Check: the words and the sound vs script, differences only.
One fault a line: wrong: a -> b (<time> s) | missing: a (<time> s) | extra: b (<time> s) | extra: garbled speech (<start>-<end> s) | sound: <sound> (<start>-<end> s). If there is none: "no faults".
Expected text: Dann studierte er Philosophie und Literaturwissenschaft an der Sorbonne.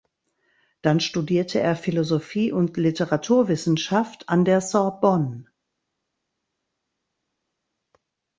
no faults